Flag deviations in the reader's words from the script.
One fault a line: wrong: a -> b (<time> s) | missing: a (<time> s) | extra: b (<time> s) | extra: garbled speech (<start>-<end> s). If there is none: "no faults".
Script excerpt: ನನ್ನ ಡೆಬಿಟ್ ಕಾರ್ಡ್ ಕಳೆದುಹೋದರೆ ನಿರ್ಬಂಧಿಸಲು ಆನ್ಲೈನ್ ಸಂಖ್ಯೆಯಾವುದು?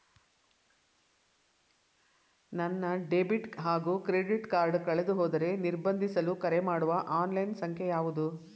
extra: ಹಾಗೂ ಕ್ರೆಡಿಟ್ (3.6 s)
extra: ಕರೆಮಾಡುವ (6.4 s)